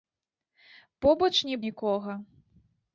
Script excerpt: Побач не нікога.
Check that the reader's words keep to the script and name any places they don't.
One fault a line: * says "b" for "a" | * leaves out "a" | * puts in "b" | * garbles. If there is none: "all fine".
all fine